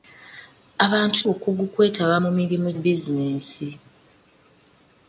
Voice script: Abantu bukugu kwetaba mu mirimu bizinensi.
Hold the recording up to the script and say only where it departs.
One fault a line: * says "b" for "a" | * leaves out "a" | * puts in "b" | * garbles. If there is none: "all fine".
all fine